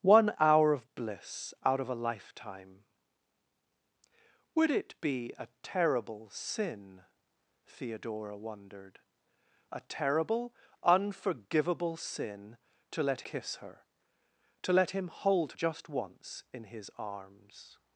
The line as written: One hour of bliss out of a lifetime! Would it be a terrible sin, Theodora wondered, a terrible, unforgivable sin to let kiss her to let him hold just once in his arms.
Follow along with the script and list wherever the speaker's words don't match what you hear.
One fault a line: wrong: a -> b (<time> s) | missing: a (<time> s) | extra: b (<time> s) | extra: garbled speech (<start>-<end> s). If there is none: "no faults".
no faults